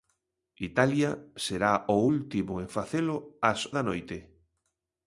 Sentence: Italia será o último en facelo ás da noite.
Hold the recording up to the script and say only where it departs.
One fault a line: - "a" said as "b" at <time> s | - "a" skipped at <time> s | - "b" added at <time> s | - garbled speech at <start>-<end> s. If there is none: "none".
none